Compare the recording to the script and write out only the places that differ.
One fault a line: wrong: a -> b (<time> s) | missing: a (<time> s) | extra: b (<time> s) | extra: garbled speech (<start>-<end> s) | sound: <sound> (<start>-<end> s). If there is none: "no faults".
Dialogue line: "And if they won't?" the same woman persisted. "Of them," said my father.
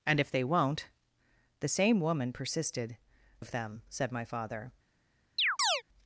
sound: chirp (5.4-5.8 s)